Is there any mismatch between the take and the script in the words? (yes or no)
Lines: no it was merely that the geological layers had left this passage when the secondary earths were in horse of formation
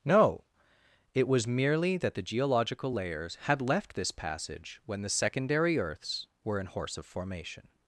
no